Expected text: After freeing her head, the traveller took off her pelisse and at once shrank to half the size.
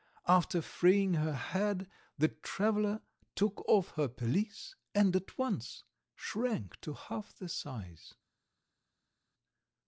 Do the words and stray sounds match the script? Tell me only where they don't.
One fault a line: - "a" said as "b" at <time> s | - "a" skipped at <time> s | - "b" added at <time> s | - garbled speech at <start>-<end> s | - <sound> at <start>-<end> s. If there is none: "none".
none